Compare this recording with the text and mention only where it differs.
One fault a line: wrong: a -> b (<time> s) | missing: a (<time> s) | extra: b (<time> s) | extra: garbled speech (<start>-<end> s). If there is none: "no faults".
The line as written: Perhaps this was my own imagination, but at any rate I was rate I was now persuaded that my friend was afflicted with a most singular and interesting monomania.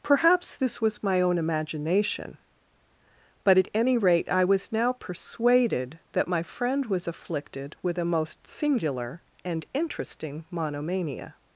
missing: rate I was (4.7 s)